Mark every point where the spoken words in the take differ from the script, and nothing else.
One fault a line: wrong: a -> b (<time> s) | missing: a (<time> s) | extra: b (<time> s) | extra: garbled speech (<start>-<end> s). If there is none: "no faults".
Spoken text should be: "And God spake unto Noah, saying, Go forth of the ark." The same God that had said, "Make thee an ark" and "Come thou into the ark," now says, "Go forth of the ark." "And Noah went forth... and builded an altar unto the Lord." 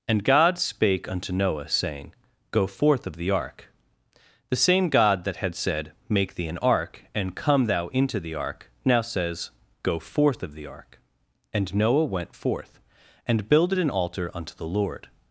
no faults